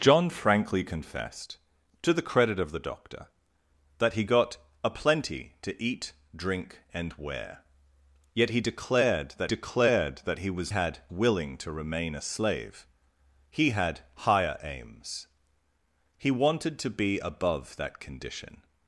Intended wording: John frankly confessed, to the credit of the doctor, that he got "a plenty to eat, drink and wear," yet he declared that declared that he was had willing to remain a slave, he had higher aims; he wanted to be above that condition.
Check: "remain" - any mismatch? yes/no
no